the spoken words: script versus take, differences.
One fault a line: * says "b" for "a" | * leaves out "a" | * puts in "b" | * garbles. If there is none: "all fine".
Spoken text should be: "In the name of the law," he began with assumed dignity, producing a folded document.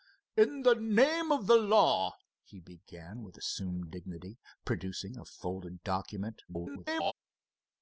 * garbles